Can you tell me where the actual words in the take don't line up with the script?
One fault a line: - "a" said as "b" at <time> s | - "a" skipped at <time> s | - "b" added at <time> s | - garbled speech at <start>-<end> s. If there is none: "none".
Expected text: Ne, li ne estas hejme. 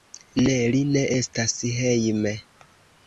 none